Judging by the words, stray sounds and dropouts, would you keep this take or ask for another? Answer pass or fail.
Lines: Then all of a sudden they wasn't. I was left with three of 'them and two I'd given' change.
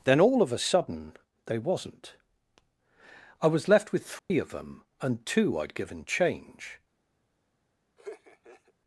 fail